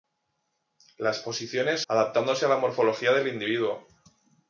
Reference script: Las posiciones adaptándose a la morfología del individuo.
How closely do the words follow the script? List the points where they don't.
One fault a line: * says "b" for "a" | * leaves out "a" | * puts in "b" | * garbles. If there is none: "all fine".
all fine